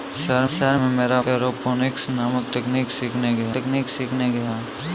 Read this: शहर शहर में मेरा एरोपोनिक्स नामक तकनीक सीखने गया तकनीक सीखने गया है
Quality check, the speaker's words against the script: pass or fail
pass